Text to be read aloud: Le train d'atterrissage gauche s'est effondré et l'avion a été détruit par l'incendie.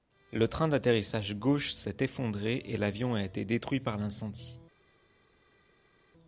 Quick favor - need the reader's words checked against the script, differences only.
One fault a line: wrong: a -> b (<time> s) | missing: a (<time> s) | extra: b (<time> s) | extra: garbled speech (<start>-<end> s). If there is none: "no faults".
no faults